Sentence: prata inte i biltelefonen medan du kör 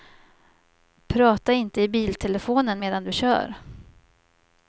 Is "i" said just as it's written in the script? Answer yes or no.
yes